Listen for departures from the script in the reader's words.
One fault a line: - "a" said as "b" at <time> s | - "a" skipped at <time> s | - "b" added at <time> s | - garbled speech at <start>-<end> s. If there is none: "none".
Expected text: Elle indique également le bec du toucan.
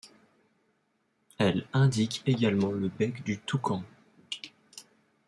none